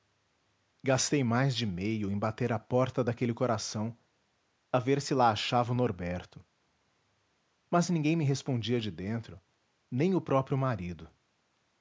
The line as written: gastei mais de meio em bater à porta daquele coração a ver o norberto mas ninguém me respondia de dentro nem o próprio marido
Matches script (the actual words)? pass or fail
fail